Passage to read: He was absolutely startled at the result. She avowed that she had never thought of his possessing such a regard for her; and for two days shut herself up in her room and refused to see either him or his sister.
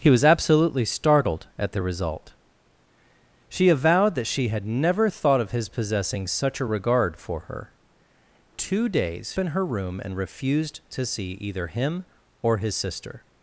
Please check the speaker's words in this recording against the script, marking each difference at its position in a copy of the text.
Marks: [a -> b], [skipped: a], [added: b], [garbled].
He was absolutely startled at the result. She avowed that she had never thought of his possessing such a regard for her; [skipped: and for] two days [skipped: shut herself up] in her room and refused to see either him or his sister.